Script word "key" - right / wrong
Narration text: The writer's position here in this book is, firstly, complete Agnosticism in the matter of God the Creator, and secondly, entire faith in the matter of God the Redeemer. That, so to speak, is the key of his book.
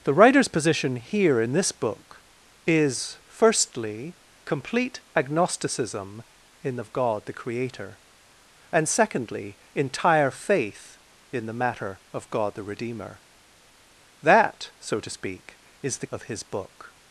wrong